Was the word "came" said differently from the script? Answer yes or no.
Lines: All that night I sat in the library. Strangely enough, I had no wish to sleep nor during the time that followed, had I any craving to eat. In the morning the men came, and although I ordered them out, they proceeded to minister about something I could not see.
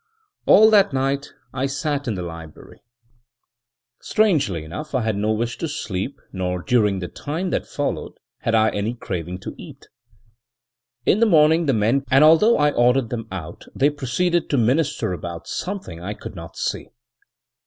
yes